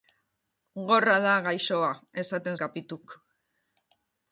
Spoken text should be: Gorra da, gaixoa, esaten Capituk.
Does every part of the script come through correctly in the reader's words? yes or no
yes